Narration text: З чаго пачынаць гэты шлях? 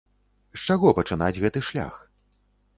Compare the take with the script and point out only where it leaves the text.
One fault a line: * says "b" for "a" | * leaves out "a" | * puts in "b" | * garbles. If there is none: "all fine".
all fine